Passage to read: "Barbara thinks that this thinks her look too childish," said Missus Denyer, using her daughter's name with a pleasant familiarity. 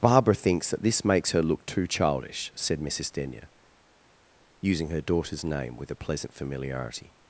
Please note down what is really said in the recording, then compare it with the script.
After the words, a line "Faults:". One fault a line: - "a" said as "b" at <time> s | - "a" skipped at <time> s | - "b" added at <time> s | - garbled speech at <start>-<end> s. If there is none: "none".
"Barbara thinks that this makes her look too childish," said Missus Denyer, using her daughter's name with a pleasant familiarity.
Faults:
- "thinks" said as "makes" at 1.1 s